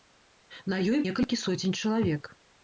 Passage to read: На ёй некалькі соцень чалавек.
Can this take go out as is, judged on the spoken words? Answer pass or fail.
pass